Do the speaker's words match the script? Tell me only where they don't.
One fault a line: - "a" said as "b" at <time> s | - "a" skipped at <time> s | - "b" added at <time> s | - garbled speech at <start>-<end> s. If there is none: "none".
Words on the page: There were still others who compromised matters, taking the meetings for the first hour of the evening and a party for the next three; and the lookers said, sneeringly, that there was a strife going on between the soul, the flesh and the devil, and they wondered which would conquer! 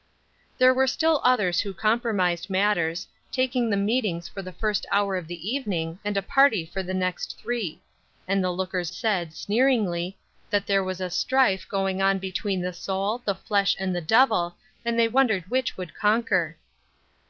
none